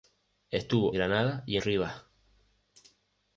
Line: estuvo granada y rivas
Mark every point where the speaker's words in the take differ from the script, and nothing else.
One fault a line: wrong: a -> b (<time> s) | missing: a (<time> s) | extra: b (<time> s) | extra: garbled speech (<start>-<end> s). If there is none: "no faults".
no faults